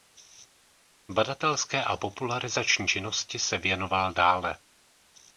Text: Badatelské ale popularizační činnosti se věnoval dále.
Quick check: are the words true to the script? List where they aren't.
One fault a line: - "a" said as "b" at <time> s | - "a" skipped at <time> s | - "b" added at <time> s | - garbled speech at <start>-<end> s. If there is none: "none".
- "ale" said as "a" at 1.8 s